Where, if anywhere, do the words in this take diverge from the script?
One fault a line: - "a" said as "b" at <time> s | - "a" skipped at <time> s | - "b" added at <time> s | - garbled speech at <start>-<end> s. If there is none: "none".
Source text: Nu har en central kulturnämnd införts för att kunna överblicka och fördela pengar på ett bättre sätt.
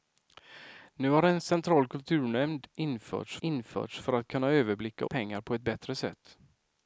- "införts" added at 3.4 s
- "och fördela" skipped at 5.1 s